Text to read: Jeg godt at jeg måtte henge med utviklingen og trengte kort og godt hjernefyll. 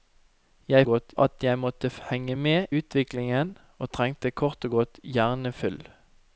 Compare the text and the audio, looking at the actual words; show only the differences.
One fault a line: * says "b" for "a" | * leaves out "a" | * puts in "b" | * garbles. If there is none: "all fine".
all fine